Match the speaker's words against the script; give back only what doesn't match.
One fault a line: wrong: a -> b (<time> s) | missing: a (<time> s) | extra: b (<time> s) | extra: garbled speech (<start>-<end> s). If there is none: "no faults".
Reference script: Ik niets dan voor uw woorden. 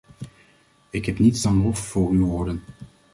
extra: heb (1.1 s)
extra: lof (1.6 s)